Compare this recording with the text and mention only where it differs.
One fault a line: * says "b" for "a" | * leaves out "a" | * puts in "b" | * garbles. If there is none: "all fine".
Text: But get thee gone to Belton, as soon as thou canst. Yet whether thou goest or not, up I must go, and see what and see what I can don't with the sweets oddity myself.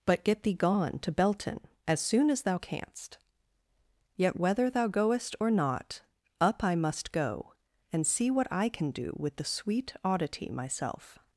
* leaves out "and see what"
* says "do" for "don't"
* says "sweet" for "sweets"